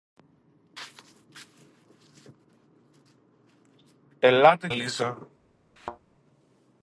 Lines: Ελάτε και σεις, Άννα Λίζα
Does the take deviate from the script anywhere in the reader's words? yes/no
yes